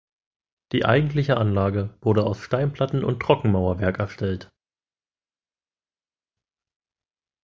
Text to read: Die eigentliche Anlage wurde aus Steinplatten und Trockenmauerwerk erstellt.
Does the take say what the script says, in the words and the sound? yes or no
yes